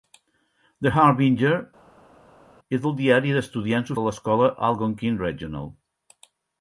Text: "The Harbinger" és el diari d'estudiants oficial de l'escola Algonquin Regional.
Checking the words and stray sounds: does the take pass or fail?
fail